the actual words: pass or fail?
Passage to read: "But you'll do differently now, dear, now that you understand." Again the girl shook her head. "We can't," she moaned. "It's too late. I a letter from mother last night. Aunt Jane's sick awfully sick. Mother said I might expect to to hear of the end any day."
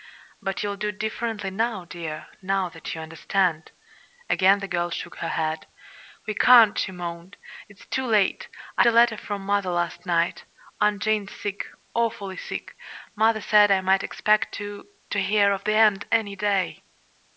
pass